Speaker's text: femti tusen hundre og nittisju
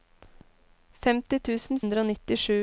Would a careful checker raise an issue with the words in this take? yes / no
no